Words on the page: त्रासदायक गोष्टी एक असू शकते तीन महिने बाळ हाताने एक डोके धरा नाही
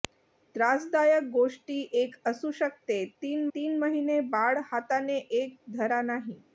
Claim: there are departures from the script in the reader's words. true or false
true